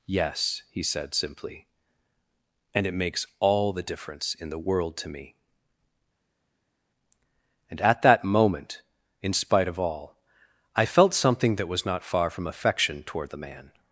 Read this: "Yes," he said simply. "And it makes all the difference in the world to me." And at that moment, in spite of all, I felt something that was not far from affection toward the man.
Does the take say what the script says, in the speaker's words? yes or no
yes